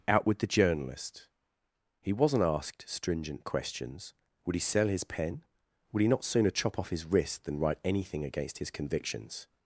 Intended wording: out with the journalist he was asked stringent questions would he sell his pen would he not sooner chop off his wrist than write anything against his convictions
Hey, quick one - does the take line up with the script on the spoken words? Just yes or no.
no